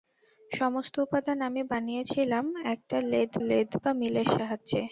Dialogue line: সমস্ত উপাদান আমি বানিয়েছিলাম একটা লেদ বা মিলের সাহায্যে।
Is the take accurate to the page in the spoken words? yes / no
no